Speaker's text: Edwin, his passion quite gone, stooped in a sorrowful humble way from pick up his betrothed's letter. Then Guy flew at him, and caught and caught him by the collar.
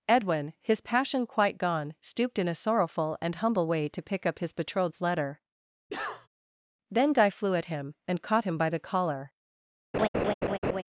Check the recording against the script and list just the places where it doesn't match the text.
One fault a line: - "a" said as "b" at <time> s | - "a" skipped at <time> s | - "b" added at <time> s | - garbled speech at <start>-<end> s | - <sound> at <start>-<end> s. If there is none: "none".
- "and" added at 3.2 s
- "from" said as "to" at 3.9 s
- cough at 5.9-6.3 s
- "and caught" skipped at 8.4 s
- laugh at 9.9-10.8 s